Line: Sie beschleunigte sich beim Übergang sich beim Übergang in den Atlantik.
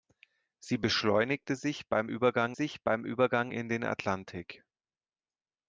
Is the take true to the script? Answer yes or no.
yes